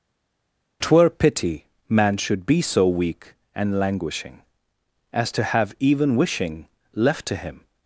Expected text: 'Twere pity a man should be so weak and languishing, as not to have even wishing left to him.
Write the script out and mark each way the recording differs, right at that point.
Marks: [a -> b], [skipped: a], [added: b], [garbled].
'Twere pity [skipped: a] man should be so weak and languishing, as [skipped: not] to have even wishing left to him.